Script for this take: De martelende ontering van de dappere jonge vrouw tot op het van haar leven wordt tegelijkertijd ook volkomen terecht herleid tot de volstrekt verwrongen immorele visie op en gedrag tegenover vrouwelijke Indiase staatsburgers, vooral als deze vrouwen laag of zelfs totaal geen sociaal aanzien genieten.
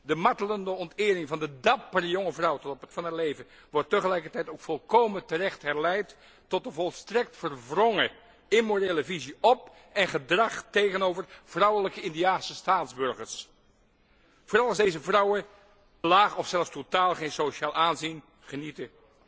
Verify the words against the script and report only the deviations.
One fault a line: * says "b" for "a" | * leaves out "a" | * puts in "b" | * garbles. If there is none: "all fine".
all fine